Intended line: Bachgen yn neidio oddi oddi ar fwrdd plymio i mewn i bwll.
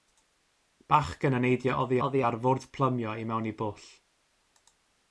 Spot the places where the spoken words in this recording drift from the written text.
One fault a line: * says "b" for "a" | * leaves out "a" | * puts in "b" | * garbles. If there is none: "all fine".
all fine